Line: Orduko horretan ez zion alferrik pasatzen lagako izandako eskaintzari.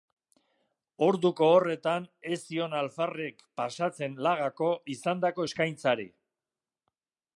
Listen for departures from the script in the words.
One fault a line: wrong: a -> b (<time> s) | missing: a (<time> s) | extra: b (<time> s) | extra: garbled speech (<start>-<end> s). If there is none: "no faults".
no faults